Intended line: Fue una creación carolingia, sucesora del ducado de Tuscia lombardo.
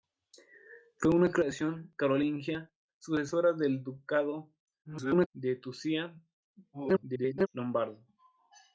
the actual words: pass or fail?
fail